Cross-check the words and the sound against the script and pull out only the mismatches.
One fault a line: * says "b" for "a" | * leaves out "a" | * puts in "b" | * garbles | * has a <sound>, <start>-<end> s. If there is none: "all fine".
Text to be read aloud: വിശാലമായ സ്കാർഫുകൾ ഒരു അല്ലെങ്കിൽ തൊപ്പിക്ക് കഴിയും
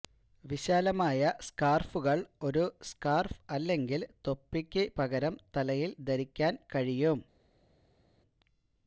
* puts in "സ്കാർഫ്"
* puts in "പകരം തലയിൽ ധരിക്കാൻ"